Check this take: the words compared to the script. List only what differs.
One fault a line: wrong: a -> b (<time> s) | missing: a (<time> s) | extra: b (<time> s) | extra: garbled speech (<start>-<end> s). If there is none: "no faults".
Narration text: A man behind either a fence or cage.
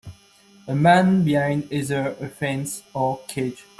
no faults